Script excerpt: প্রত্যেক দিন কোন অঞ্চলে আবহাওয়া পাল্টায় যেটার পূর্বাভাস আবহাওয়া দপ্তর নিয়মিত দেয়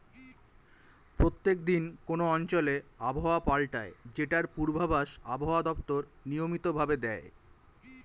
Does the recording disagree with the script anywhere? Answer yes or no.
yes